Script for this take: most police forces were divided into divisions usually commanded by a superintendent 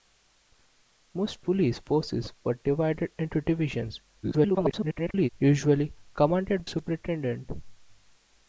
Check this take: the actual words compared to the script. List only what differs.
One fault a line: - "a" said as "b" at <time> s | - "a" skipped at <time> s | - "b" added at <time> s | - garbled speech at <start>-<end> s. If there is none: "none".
- garbled speech at 4.2-5.3 s
- "by a" skipped at 6.7 s